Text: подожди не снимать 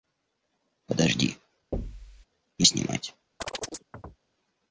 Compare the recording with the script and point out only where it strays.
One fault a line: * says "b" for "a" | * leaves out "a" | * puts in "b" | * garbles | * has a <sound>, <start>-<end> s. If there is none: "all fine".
* has a thud, 1.7-2.3 s
* has a chirp, 3.4-4.2 s